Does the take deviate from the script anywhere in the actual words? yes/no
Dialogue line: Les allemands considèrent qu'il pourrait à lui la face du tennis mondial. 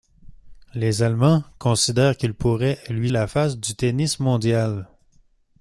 no